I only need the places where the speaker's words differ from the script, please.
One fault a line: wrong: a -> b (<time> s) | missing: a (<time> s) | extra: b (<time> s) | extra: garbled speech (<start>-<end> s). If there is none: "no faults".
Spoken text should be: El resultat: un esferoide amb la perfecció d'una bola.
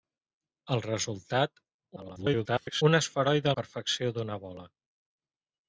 extra: garbled speech (2.0-2.8 s)
missing: amb (3.5 s)